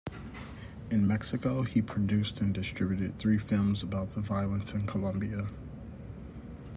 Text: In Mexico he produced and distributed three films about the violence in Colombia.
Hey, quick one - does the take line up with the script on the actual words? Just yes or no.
yes